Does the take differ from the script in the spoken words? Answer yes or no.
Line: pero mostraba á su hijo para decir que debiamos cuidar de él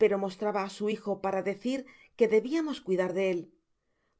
no